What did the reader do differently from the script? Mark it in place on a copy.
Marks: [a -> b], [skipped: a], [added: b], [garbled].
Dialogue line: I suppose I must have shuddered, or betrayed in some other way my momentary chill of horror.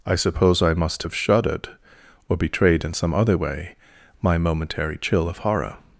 I suppose I must have shuddered, or betrayed in some other way my momentary chill of horror.